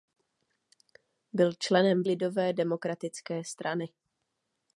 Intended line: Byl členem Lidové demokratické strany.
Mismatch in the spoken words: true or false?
false